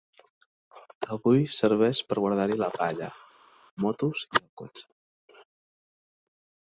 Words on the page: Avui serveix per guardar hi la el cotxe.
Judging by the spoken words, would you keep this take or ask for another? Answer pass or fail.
fail